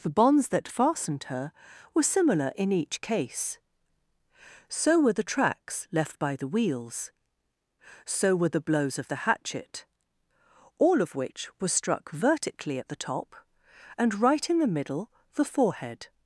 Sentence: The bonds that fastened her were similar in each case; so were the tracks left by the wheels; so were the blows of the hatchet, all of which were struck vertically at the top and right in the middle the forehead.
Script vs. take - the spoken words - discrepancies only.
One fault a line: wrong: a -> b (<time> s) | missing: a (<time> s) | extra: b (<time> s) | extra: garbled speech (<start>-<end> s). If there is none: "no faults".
no faults